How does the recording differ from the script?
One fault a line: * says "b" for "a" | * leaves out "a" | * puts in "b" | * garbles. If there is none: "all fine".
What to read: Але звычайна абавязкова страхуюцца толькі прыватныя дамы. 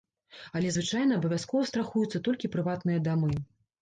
all fine